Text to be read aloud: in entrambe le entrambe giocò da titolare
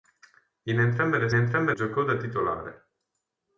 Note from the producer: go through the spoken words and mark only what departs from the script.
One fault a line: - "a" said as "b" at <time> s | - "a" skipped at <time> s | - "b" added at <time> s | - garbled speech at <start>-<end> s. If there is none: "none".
none